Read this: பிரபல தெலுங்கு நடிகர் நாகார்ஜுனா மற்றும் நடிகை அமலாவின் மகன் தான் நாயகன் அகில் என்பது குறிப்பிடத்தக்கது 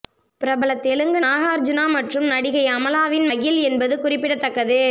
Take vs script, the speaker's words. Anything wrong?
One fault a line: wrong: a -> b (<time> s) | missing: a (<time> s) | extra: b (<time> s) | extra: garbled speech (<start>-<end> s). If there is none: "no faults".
missing: நடிகர் (1.2 s)
missing: மகன் தான் நாயகன் (3.3 s)